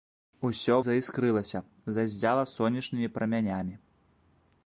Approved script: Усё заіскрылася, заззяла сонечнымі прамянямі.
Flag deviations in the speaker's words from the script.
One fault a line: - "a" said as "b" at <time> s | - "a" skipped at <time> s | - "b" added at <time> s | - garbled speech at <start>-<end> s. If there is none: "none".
none